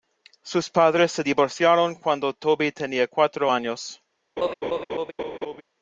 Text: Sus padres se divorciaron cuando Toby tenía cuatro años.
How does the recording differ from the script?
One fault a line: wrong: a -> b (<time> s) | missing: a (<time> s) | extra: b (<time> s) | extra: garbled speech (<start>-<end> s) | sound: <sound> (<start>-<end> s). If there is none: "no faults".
sound: laugh (4.4-5.6 s)